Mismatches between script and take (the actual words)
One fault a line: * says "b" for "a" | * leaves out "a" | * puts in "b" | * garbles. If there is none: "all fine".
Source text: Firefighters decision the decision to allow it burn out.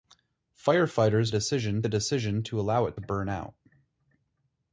all fine